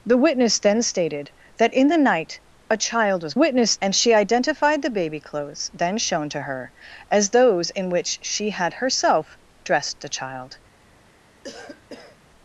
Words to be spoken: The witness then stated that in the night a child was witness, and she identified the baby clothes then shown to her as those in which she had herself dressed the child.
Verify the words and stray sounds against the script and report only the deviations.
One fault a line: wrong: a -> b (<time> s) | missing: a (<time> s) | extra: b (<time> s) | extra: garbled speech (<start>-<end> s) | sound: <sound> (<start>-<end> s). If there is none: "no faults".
sound: cough (11.4-12.2 s)